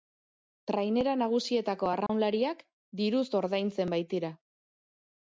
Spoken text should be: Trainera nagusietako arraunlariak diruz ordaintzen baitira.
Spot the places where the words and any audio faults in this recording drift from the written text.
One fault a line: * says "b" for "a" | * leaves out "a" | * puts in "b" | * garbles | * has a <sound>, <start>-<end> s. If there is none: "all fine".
* has a dropout, 2.1-2.1 s